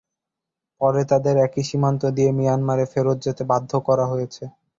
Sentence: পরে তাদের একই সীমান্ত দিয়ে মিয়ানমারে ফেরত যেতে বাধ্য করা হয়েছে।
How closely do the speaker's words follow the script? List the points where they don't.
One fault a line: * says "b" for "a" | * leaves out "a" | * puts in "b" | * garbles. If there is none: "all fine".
all fine